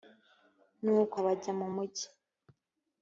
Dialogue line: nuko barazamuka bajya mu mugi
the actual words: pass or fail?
fail